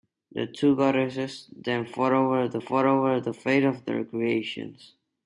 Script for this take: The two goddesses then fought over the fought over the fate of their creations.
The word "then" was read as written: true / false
true